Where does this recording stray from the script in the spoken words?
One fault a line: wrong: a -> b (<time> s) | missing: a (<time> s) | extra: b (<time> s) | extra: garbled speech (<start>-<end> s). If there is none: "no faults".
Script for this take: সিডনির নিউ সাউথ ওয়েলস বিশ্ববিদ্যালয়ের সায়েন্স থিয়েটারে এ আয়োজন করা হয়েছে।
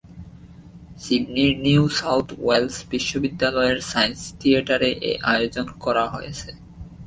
no faults